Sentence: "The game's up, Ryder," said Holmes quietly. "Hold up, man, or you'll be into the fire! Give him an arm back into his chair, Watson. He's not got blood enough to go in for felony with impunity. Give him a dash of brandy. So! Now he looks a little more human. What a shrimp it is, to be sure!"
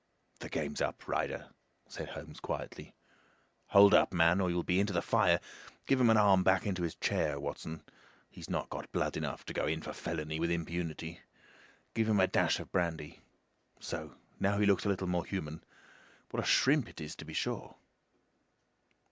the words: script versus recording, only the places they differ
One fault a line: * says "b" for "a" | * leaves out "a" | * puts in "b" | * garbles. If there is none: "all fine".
all fine